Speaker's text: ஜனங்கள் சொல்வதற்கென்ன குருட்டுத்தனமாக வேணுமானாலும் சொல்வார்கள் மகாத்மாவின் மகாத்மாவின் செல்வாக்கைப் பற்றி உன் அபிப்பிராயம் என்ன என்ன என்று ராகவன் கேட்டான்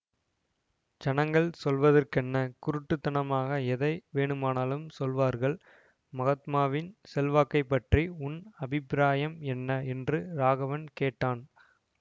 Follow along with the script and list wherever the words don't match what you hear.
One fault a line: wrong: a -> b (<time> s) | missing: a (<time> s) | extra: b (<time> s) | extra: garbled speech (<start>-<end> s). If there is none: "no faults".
extra: எதை (3.7 s)
missing: மகாத்மாவின் (6.9 s)
missing: என்ன (9.7 s)